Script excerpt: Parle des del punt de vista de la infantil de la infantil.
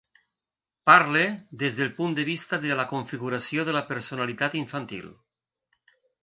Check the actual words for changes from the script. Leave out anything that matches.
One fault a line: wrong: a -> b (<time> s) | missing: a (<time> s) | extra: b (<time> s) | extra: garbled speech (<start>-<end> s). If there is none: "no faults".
wrong: infantil -> configuració (3.0 s)
extra: personalitat (3.9 s)